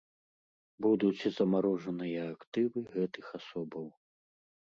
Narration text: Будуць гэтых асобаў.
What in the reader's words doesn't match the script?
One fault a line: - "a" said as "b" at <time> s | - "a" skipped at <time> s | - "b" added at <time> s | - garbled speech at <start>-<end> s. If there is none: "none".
- "замарожаныя актывы" added at 1.4 s